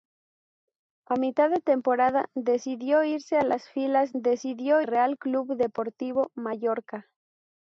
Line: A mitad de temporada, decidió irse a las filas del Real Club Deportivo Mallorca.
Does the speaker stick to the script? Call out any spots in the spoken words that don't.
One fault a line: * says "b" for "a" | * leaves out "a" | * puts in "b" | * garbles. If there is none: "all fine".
* says "decidió" for "del"